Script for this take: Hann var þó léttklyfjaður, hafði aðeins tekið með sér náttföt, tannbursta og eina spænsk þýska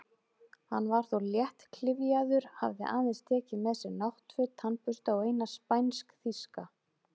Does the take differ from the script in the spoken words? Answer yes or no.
no